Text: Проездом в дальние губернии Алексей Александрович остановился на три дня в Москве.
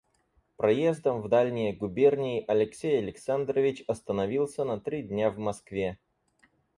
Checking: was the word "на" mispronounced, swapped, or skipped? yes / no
no